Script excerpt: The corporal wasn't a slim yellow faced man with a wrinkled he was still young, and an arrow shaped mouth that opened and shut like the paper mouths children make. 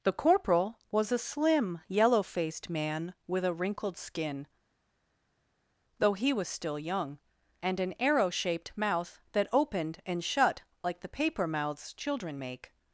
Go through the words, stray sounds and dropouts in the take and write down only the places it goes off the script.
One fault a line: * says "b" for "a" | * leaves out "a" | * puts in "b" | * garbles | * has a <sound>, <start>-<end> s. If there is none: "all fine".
* says "was" for "wasn't"
* puts in "skin though"